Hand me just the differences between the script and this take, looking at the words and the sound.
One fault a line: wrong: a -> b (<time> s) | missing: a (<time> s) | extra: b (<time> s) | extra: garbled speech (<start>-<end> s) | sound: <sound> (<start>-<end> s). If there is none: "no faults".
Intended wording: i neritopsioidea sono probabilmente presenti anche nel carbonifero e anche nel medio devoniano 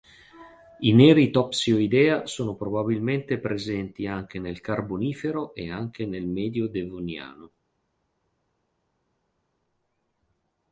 no faults